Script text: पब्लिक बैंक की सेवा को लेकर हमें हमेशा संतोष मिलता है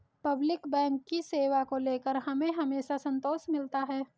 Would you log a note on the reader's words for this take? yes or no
no